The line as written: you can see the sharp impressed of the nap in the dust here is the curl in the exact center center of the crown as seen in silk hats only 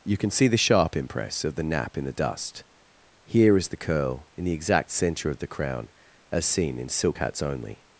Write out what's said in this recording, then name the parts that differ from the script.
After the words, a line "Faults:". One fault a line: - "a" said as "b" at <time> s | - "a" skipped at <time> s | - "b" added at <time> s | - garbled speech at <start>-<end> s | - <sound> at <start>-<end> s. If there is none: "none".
you can see the sharp impress of the nap in the dust here is the curl in the exact center of the crown as seen in silk hats only
Faults:
- "impressed" said as "impress" at 0.9 s
- "center" skipped at 5.3 s